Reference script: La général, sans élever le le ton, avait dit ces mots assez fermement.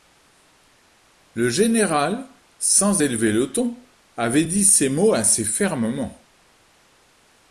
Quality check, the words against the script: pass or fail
fail